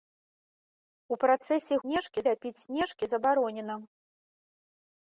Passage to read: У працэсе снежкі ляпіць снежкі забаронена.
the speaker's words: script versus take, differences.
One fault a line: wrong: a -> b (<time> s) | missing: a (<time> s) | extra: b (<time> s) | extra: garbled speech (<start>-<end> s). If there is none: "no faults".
no faults